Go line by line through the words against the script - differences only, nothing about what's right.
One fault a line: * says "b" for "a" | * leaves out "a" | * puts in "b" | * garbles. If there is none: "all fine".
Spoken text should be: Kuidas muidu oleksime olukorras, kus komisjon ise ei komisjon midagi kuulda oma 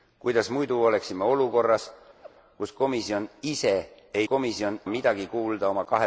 all fine